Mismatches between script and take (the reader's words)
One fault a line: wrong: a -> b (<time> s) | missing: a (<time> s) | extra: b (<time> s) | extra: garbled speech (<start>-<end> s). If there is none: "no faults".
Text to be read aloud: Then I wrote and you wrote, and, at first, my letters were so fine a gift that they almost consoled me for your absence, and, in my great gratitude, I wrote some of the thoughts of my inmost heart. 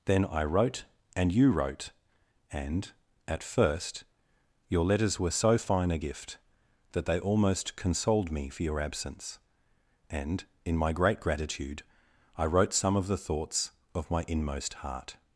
wrong: my -> your (4.7 s)